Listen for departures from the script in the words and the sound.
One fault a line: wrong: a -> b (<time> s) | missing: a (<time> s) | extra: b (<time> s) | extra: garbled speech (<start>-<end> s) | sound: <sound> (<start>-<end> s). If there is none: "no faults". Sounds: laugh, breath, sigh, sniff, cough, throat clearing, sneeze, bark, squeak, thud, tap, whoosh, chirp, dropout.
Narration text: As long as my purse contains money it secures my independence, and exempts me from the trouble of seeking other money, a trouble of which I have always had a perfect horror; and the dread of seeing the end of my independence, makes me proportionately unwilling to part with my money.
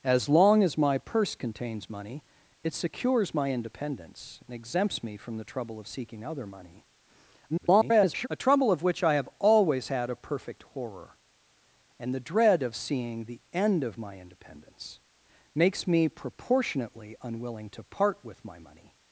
extra: garbled speech (7.5-8.3 s)